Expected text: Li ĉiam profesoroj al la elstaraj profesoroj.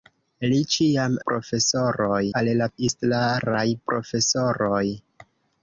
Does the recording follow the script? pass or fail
pass